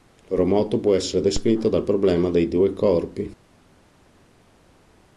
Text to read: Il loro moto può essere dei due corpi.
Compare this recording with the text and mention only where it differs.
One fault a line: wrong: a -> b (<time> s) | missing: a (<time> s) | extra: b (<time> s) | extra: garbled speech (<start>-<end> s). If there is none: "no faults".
extra: descritto dal problema (1.2 s)